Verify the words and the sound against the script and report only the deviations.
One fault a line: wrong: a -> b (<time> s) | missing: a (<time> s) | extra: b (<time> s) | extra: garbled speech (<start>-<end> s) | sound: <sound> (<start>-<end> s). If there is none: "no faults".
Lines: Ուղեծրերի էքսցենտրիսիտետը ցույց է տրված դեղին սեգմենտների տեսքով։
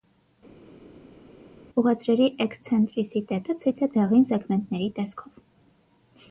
missing: տրված (3.9 s)